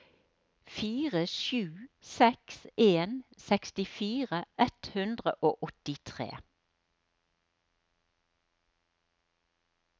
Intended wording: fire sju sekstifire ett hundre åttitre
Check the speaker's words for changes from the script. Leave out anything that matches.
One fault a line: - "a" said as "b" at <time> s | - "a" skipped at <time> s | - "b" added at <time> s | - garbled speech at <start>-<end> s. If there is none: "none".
- "seks en" added at 2.0 s
- "og" added at 5.5 s